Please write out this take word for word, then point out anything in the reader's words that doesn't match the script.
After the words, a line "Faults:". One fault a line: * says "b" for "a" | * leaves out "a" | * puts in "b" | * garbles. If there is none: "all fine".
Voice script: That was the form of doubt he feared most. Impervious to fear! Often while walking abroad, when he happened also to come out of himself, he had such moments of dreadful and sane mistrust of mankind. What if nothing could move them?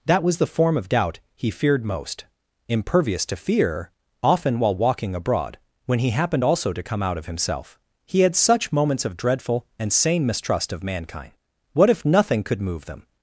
That was the form of doubt he feared most. Impervious to fear! Often while walking abroad, when he happened also to come out of himself, he had such moments of dreadful and sane mistrust of mankind. What if nothing could move them?
Faults:
all fine